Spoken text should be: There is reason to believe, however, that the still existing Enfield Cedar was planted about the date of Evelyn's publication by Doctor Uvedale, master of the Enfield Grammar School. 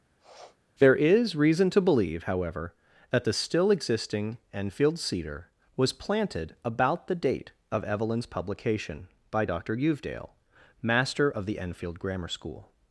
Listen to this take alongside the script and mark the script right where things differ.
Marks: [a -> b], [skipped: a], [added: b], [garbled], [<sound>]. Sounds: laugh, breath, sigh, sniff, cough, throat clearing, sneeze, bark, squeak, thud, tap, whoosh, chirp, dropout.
[sniff] There is reason to believe, however, that the still existing Enfield Cedar was planted about the date of Evelyn's publication by Doctor Uvedale, master of the Enfield Grammar School.